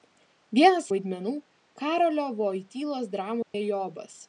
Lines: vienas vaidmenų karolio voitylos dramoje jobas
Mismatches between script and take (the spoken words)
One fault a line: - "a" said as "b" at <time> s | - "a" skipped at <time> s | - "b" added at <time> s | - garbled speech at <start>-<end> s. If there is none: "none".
none